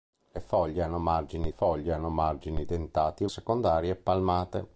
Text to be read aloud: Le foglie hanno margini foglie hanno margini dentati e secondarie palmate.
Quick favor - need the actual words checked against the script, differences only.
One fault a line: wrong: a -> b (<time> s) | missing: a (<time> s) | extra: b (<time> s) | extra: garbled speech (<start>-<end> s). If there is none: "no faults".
no faults